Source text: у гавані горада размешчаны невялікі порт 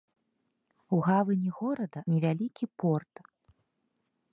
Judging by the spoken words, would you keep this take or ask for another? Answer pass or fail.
fail